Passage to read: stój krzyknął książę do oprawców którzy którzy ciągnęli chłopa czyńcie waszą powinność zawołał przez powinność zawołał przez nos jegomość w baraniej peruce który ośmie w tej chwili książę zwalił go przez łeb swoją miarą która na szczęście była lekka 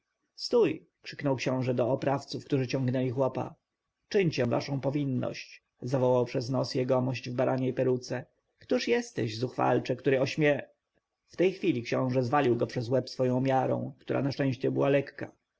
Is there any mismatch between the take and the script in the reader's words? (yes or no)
yes